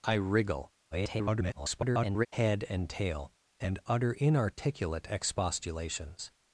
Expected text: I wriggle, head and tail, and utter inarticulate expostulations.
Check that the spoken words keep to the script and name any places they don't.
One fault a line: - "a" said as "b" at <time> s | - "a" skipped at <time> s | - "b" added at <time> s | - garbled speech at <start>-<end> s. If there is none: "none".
- garbled speech at 0.9-2.3 s